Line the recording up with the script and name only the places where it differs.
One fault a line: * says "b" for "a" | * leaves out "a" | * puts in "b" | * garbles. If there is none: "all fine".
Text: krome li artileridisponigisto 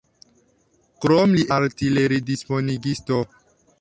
all fine